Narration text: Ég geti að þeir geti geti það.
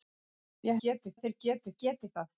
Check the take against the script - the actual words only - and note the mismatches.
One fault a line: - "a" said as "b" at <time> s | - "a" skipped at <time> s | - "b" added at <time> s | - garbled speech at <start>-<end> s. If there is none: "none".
none